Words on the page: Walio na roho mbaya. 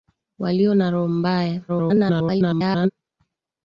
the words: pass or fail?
fail